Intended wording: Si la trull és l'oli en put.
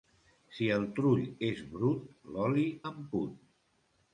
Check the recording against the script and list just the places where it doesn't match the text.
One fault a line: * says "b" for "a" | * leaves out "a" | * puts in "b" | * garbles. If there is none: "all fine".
* says "el" for "la"
* puts in "brut"